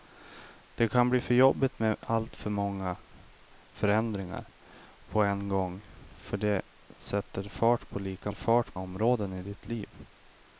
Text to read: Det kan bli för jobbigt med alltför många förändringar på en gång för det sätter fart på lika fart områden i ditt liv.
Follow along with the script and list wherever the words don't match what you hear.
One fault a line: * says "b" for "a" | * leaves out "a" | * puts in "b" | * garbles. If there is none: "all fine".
all fine